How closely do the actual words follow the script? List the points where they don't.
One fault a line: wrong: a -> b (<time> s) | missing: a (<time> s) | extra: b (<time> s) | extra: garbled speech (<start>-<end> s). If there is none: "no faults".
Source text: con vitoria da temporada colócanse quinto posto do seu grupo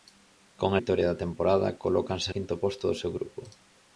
no faults